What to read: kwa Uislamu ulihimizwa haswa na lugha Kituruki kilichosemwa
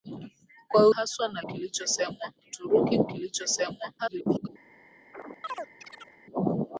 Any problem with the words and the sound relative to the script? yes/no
yes